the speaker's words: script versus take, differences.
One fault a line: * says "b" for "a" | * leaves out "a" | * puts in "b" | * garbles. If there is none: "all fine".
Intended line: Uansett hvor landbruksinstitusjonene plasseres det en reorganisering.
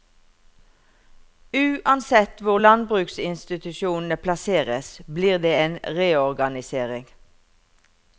* puts in "blir"